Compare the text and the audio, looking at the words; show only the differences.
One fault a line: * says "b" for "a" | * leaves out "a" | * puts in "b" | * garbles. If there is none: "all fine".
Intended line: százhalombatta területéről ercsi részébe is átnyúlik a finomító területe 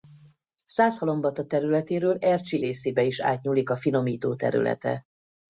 all fine